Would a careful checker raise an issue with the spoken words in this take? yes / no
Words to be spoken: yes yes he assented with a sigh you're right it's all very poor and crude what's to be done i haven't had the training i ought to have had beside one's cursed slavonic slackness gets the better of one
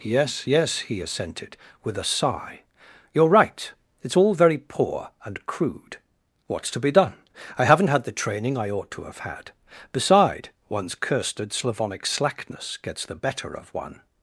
no